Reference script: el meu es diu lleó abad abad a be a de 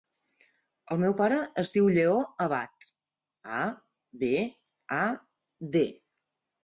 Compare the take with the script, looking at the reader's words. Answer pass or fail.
fail